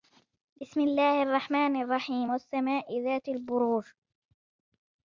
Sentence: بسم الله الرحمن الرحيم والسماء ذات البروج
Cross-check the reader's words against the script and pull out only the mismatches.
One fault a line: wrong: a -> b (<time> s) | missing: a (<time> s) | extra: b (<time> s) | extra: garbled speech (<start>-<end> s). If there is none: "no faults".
no faults